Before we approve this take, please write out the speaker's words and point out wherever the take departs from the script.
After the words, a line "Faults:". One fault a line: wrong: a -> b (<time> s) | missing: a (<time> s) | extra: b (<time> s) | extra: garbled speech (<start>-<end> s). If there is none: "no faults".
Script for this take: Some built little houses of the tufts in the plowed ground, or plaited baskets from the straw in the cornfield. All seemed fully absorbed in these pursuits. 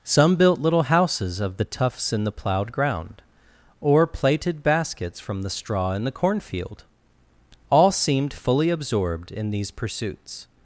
Some built little houses of the tufts in the plowed ground, or plaited baskets from the straw in the cornfield. All seemed fully absorbed in these pursuits.
Faults:
no faults